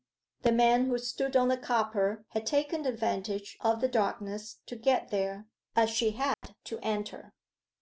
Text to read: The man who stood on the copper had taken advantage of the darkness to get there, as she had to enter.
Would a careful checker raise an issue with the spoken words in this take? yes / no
no